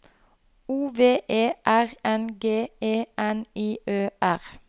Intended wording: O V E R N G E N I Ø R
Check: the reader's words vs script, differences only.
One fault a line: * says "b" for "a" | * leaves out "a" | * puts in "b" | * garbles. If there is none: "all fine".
all fine